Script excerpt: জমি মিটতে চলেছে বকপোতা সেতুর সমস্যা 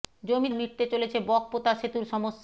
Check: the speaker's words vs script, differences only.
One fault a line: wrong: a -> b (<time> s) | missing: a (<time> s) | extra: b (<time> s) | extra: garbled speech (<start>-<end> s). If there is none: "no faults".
no faults